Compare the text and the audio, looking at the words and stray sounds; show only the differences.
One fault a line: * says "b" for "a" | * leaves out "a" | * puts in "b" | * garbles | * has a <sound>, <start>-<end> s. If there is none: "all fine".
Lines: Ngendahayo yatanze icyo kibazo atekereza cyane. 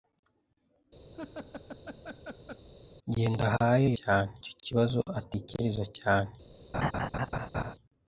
* has a laugh, 1.1-2.7 s
* says "cyane" for "yatanze"
* has a laugh, 6.7-7.7 s